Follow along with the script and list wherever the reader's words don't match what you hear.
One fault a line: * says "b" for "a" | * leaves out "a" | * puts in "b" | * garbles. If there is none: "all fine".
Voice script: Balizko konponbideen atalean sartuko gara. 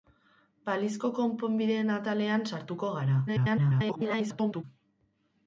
* garbles